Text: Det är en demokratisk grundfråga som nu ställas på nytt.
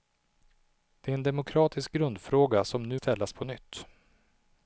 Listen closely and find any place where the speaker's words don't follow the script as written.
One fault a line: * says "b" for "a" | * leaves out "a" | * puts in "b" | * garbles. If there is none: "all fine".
all fine